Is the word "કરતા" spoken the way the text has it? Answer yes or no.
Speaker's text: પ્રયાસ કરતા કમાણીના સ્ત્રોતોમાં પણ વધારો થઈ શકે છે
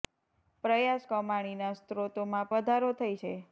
no